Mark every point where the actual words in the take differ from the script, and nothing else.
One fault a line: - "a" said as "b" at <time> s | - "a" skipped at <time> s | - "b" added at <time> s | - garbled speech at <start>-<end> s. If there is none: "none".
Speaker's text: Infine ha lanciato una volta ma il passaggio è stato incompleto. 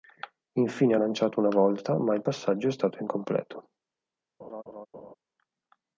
none